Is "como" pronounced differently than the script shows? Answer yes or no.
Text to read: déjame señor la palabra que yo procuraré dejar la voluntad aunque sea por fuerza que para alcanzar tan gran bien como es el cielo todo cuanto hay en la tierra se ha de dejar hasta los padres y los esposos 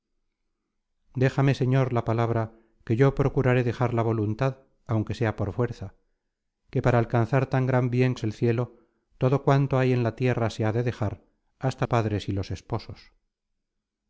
yes